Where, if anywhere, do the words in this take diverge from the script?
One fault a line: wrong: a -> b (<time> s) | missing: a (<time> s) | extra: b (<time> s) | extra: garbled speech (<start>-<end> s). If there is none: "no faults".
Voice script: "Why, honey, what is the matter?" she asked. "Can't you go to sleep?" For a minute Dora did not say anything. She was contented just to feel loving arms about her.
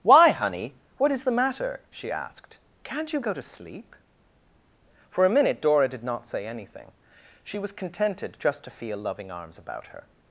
no faults